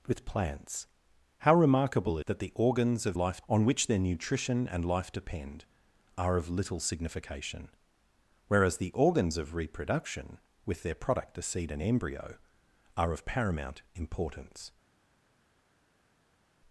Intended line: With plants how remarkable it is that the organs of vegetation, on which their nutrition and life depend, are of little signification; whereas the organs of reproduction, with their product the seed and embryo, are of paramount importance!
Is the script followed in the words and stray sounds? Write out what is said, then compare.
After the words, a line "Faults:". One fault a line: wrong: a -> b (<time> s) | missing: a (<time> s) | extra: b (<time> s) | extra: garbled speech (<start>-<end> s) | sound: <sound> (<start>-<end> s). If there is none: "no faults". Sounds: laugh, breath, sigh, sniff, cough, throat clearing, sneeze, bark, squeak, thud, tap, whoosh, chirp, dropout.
With plants how remarkable that the organs of life, on which their nutrition and life depend, are of little signification; whereas the organs of reproduction, with their product the seed and embryo, are of paramount importance!
Faults:
missing: it is (2.2 s)
wrong: vegetation -> life (3.2 s)